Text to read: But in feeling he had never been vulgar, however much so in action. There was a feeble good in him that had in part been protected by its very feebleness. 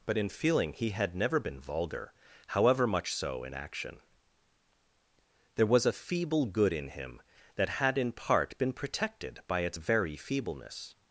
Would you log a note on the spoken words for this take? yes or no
no